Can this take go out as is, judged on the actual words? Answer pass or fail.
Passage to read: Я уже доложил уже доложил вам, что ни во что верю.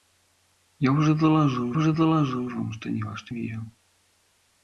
pass